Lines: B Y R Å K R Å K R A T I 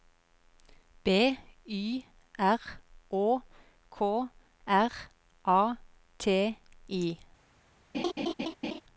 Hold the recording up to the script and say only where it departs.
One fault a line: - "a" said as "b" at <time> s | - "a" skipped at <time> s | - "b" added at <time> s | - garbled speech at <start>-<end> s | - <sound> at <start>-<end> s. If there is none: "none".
- "Å K R" skipped at 4.9 s
- laugh at 7.9-8.8 s